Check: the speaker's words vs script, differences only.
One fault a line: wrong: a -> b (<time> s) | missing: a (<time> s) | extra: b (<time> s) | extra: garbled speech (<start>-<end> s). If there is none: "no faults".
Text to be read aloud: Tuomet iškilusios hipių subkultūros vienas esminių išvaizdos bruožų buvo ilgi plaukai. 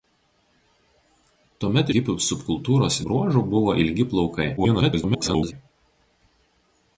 missing: iškilusios (1.9 s)
missing: vienas esminių išvaizdos (3.0 s)
extra: garbled speech (4.6-5.5 s)